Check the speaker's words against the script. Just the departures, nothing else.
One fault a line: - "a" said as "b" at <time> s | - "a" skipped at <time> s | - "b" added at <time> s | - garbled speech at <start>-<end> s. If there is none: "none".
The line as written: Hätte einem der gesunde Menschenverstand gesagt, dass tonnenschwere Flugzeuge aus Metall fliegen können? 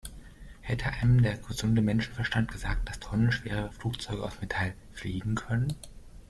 none